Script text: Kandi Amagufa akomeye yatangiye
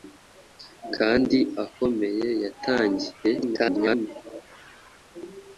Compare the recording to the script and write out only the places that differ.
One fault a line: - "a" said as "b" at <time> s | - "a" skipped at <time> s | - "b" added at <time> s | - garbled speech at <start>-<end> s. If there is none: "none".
- "Amagufa" skipped at 1.4 s
- garbled speech at 3.4-4.1 s